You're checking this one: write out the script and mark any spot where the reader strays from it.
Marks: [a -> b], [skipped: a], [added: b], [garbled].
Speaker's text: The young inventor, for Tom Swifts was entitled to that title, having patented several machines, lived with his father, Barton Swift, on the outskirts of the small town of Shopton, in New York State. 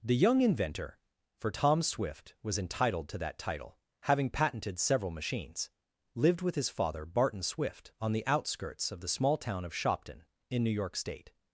The young inventor, for Tom [Swifts -> Swift] was entitled to that title, having patented several machines, lived with his father, Barton Swift, on the outskirts of the small town of Shopton, in New York State.